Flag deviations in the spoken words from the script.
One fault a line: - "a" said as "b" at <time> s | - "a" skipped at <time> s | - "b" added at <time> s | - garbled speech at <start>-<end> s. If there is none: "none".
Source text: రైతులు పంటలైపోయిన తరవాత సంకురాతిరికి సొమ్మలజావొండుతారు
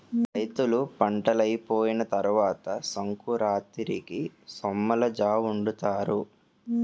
none